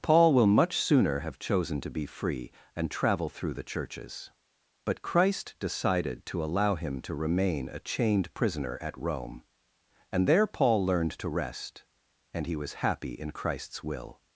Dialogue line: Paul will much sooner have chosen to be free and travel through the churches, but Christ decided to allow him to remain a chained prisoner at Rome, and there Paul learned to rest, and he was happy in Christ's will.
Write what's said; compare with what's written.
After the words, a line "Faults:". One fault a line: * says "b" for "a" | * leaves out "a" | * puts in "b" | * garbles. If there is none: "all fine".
Paul will much sooner have chosen to be free and travel through the churches, but Christ decided to allow him to remain a chained prisoner at Rome, and there Paul learned to rest, and he was happy in Christ's will.
Faults:
all fine